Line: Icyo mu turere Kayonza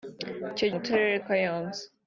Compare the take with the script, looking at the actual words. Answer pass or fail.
pass